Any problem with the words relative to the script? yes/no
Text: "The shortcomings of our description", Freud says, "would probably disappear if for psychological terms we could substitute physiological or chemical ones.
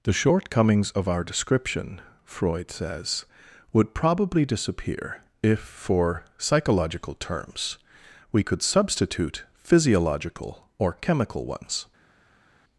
no